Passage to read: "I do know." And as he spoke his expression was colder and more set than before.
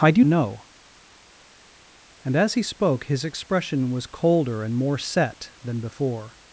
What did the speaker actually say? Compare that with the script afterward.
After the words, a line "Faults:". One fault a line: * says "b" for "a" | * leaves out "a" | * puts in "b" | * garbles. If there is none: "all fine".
"I do know." And as he spoke his expression was colder and more set than before.
Faults:
all fine